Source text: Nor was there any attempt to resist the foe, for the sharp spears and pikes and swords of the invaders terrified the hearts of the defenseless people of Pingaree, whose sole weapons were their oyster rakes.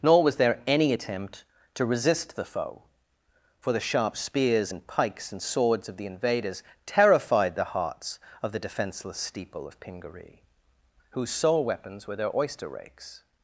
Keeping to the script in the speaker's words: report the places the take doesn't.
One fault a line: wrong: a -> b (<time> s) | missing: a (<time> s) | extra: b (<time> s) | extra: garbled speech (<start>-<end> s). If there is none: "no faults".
wrong: people -> steeple (9.2 s)